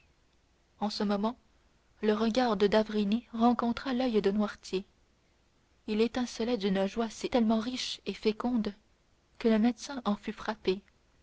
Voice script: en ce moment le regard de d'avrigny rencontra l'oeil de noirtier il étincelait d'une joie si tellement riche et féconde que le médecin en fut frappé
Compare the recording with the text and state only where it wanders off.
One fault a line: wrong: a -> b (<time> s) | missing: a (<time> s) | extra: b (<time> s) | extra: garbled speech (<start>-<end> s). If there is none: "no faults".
no faults